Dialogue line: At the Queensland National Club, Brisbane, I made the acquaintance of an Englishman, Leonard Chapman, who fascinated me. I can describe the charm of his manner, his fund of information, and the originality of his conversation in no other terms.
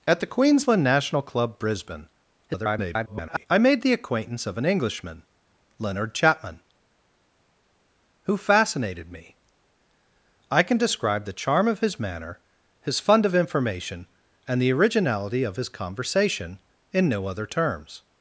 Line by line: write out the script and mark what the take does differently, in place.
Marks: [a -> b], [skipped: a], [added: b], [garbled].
At the Queensland National Club, Brisbane, [garbled] I made the acquaintance of an Englishman, Leonard Chapman, who fascinated me. I can describe the charm of his manner, his fund of information, and the originality of his conversation in no other terms.